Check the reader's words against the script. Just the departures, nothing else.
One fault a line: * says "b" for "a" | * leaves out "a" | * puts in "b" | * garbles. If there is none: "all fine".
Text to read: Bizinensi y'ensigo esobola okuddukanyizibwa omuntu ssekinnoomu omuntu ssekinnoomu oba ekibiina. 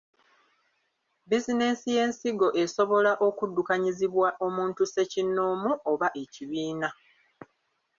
* leaves out "omuntu ssekinnoomu"